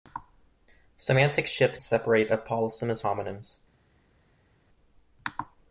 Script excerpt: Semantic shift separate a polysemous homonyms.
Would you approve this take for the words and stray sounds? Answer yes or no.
yes